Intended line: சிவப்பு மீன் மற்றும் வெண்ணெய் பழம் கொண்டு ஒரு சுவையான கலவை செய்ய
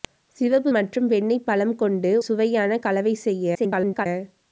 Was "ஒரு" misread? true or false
true